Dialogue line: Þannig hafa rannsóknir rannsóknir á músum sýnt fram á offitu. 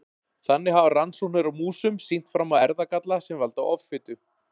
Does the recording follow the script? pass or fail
fail